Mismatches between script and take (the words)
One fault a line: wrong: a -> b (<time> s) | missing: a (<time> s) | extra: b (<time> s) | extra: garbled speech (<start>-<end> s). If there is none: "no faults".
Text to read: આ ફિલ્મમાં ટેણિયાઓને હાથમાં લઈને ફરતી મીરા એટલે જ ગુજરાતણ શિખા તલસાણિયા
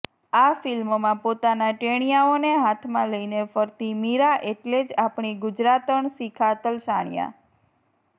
extra: પોતાના (1.2 s)
extra: આપણી (5.0 s)